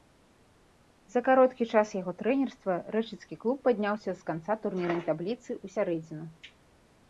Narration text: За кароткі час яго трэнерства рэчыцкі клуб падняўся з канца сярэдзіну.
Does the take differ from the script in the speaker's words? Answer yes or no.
yes